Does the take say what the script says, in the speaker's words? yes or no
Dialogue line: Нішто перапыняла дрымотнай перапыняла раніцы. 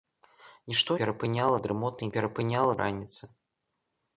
yes